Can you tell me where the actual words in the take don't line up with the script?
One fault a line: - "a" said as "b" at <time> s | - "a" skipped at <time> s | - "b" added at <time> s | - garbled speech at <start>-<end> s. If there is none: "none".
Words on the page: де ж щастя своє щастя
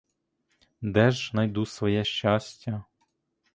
- "щастя" said as "найду" at 1.3 s